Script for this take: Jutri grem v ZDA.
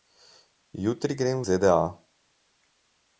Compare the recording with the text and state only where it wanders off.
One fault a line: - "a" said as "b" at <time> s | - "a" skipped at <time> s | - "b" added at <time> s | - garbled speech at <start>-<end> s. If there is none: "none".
none